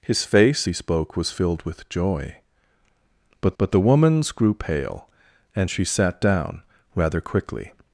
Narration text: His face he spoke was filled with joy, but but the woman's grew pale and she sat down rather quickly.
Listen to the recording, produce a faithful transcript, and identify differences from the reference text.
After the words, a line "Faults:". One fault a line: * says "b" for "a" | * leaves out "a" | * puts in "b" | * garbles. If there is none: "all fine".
His face he spoke was filled with joy, but but the woman's grew pale and she sat down rather quickly.
Faults:
all fine